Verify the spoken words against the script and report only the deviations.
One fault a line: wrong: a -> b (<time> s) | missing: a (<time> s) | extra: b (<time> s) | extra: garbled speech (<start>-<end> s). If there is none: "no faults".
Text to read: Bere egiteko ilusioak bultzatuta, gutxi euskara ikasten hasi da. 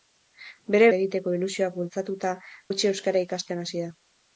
no faults